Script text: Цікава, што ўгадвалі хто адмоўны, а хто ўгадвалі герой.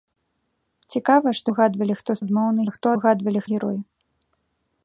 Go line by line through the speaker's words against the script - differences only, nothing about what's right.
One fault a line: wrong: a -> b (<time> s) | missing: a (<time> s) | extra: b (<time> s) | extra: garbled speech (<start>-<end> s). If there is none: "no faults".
no faults